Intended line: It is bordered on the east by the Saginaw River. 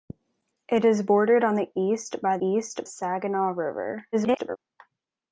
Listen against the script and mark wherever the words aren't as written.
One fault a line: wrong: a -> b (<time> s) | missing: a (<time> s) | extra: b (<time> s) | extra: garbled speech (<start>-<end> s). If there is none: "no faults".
wrong: the -> east (2.4 s)
extra: garbled speech (4.1-4.6 s)